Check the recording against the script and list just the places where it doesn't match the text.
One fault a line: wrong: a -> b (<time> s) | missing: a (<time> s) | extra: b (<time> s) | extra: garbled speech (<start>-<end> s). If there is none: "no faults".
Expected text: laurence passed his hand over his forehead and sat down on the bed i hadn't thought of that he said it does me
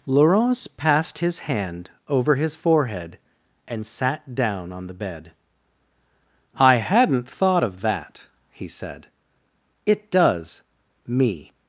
no faults